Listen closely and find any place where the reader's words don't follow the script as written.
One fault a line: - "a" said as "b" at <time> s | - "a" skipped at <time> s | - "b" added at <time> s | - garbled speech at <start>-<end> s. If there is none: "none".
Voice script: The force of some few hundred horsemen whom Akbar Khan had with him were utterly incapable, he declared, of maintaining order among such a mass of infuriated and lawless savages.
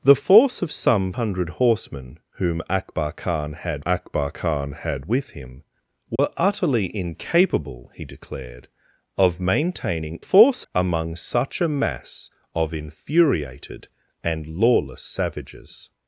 - "few" skipped at 1.1 s
- "Akbar Khan had" added at 3.9 s
- "order" said as "force" at 10.2 s